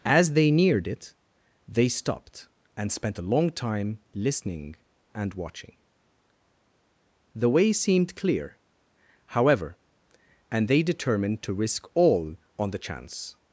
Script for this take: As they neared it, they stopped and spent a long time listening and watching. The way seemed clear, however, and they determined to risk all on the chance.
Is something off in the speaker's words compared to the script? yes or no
no